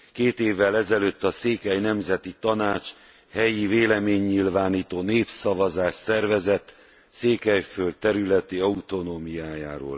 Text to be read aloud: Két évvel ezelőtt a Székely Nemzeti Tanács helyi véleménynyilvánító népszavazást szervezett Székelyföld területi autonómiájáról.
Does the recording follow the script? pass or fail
pass